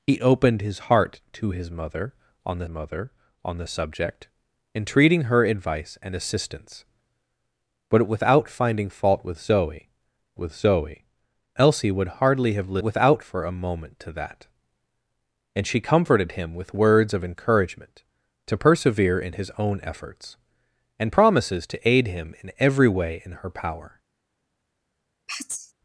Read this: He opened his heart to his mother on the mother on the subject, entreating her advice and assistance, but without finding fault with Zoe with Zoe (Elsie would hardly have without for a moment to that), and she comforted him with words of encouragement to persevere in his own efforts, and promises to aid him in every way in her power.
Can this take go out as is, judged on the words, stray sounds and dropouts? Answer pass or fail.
fail